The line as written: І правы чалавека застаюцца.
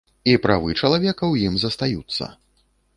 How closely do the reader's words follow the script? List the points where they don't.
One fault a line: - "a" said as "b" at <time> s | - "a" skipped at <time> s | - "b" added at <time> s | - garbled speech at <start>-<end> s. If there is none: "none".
- "ў ім" added at 1.3 s